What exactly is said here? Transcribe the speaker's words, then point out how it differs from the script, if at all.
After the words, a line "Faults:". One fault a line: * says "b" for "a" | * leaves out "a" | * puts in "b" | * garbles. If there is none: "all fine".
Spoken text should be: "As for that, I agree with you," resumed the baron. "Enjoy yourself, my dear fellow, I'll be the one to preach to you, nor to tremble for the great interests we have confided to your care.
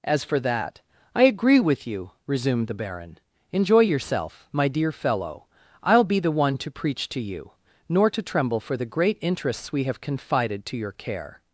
"As for that, I agree with you," resumed the baron. "Enjoy yourself, my dear fellow, I'll be the one to preach to you, nor to tremble for the great interests we have confided to your care.
Faults:
all fine